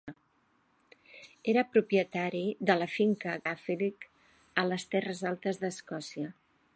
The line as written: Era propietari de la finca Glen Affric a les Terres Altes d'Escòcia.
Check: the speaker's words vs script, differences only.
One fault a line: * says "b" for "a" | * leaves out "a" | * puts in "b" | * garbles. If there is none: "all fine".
* leaves out "Glen"